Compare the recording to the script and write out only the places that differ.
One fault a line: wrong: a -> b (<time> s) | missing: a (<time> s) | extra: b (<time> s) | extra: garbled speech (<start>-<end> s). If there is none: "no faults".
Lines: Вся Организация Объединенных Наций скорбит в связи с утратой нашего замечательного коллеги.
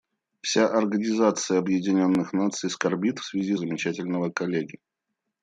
missing: с утратой нашего (3.6 s)